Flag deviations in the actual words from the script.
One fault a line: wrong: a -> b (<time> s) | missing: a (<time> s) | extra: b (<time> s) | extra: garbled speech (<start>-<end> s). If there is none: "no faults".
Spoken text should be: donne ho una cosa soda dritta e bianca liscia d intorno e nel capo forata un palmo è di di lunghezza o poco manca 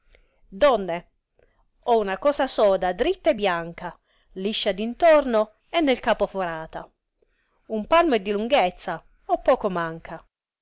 missing: di (8.3 s)